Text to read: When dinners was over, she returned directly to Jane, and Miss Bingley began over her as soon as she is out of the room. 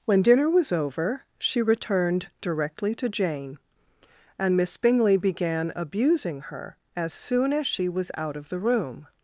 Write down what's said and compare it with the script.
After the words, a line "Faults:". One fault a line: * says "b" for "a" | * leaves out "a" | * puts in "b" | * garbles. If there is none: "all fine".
When dinner was over, she returned directly to Jane, and Miss Bingley began abusing her as soon as she was out of the room.
Faults:
* says "dinner" for "dinners"
* says "abusing" for "over"
* says "was" for "is"